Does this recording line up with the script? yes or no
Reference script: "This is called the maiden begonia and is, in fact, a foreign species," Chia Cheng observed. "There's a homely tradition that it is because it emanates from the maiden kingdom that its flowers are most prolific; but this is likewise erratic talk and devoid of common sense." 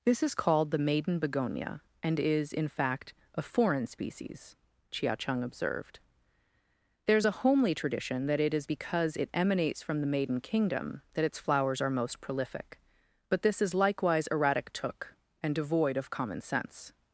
no